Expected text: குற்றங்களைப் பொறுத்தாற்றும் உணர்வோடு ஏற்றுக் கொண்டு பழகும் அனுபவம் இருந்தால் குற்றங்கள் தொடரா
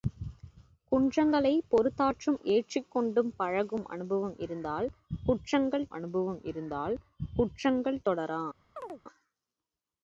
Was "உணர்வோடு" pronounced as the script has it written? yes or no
no